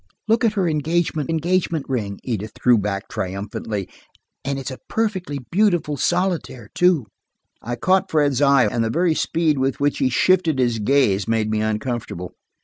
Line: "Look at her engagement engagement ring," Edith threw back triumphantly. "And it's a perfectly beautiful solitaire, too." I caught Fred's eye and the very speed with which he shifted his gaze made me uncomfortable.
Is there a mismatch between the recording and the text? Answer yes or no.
no